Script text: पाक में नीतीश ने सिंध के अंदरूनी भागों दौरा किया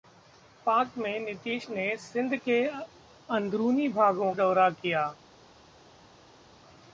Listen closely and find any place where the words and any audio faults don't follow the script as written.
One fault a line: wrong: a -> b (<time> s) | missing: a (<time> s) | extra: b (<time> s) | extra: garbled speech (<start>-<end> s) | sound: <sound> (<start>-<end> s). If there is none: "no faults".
no faults